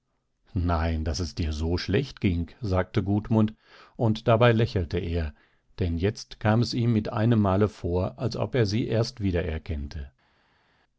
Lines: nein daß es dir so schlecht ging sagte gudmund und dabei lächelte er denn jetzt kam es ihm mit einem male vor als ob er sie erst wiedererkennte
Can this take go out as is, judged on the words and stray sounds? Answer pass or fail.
pass